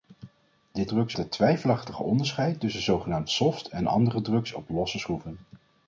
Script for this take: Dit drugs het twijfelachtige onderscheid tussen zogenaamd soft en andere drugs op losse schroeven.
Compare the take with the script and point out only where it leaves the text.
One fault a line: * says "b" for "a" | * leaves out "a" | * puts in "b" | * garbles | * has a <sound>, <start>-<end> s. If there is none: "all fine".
all fine